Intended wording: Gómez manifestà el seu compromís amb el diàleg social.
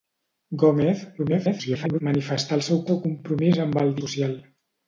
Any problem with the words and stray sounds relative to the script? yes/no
yes